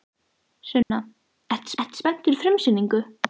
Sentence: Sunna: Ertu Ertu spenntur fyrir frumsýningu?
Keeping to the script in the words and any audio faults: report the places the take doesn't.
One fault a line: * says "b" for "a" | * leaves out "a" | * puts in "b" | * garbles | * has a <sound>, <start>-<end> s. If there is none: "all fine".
* has a dropout, 0.8-0.9 s